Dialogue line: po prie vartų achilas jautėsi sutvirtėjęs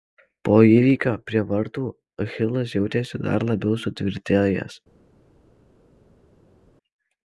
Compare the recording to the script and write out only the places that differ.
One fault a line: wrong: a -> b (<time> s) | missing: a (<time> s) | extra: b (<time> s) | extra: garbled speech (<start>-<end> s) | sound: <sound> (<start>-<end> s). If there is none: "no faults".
extra: įvykio (0.7 s)
extra: dar labiau (3.3 s)